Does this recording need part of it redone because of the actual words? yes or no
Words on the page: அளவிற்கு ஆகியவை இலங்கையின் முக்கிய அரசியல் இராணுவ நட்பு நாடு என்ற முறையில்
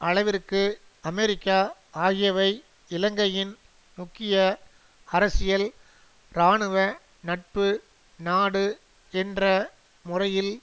yes